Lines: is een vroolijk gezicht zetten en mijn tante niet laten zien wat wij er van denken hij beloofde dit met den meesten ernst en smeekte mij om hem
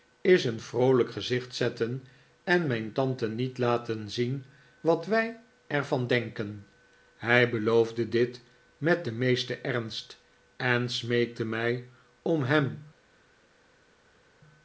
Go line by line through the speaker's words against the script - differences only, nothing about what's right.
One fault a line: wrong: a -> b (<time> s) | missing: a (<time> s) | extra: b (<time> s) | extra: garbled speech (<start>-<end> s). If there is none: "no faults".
no faults